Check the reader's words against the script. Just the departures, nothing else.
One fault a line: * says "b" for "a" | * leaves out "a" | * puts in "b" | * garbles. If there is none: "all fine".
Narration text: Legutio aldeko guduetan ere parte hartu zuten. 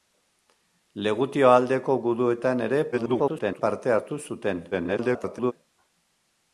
* garbles
* garbles